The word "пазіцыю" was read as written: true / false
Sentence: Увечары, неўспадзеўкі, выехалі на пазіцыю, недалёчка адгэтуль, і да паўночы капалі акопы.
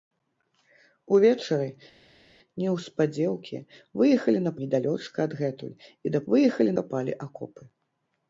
false